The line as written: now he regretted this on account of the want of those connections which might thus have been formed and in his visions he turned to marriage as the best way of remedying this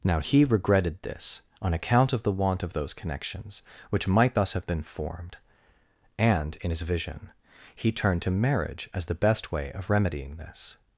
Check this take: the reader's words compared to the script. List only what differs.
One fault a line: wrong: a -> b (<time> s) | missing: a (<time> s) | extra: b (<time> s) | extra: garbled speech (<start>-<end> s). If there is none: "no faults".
wrong: visions -> vision (6.8 s)